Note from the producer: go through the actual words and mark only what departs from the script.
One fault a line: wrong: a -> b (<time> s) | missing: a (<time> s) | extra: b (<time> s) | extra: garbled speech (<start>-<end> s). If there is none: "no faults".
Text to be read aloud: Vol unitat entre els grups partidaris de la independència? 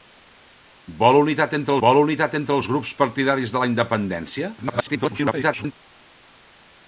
extra: vol unitat entre (1.8 s)
extra: garbled speech (4.6-5.7 s)